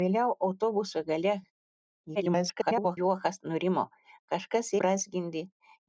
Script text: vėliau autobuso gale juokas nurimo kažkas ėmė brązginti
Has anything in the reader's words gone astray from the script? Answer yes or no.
yes